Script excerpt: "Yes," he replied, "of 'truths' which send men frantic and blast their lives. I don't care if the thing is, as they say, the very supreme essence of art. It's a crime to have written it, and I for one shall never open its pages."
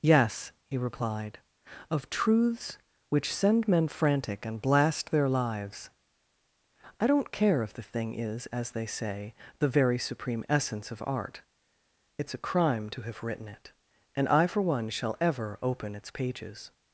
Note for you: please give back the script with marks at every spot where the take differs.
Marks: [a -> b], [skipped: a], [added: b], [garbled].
"Yes," he replied, "of 'truths' which send men frantic and blast their lives. I don't care if the thing is, as they say, the very supreme essence of art. It's a crime to have written it, and I for one shall [never -> ever] open its pages."